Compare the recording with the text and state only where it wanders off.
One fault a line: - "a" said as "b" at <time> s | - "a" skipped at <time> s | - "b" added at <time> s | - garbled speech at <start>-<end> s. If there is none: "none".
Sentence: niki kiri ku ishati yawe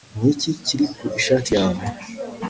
none